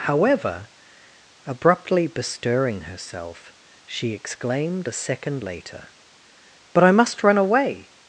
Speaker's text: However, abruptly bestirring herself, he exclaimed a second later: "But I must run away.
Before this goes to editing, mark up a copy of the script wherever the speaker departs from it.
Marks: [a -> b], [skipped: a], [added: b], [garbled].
However, abruptly bestirring herself, [he -> she] exclaimed a second later: "But I must run away.